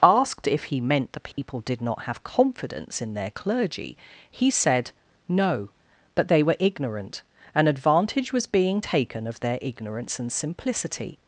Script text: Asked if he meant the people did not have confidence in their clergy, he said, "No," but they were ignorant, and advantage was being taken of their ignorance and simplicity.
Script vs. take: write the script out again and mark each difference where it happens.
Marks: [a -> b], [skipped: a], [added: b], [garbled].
Asked if he meant the people did not have confidence in their clergy, he said, "No," but they were ignorant, and advantage was being taken of their ignorance and simplicity.